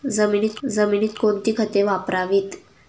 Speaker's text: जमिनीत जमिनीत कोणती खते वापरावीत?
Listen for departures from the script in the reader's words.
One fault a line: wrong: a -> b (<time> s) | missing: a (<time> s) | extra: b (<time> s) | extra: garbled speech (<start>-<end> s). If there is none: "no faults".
no faults